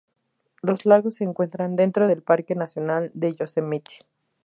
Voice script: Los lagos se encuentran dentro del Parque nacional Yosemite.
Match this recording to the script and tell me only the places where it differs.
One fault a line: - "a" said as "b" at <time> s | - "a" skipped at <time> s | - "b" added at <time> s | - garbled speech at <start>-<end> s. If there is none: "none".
- "de" added at 3.1 s